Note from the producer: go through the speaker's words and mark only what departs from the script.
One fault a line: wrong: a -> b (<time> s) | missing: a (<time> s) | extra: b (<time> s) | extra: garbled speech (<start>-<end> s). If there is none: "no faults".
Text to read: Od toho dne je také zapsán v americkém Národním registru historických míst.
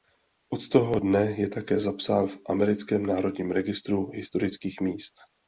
no faults